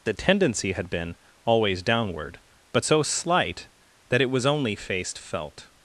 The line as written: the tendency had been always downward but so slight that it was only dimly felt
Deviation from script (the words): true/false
true